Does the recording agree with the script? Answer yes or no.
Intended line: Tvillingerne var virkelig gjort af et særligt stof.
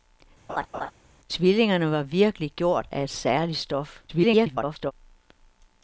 no